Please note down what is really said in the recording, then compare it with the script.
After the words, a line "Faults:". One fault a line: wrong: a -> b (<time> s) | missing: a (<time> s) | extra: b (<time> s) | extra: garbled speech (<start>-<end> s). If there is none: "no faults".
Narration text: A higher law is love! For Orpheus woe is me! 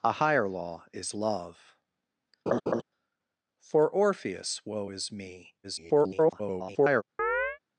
A higher law is love! For Orpheus woe is me! [garbled]
Faults:
extra: garbled speech (5.6-7.0 s)